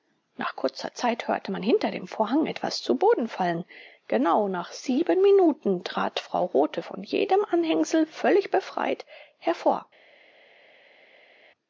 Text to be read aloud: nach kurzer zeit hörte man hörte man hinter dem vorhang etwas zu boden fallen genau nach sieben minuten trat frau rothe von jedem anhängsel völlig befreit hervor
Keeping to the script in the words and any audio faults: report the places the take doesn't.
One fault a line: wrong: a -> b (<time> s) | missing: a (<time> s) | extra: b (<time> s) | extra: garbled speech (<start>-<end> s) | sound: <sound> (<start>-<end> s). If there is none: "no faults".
missing: hörte man (1.6 s)